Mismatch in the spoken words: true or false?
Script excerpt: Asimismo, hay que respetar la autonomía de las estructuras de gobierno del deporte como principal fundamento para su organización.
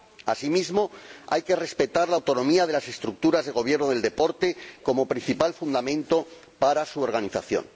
false